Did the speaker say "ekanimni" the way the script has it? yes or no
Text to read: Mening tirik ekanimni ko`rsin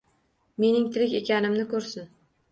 yes